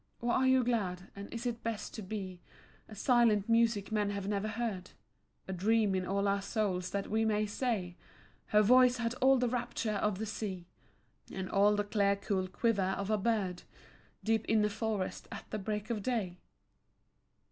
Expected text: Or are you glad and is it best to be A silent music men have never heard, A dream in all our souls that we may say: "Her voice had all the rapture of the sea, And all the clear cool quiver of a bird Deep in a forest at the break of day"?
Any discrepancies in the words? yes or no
no